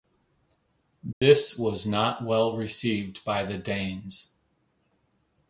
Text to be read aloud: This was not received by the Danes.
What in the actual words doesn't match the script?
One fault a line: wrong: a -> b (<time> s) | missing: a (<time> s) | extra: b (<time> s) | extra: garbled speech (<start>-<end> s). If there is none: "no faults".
extra: well (2.2 s)